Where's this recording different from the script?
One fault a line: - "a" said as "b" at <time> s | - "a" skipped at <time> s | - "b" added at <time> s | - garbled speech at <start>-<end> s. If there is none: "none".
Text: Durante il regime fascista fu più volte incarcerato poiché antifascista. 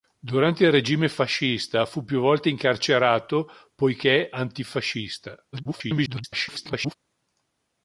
- garbled speech at 5.5-6.9 s